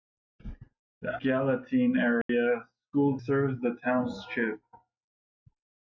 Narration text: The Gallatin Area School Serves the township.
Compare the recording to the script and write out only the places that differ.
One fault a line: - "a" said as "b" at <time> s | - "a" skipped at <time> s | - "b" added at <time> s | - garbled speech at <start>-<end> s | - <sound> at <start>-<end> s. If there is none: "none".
- dropout at 2.2-2.3 s